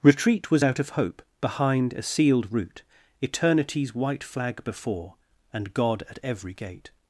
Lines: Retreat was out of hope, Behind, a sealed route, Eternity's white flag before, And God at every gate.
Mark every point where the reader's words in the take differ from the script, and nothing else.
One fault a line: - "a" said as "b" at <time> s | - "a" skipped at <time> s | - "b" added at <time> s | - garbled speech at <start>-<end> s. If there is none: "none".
none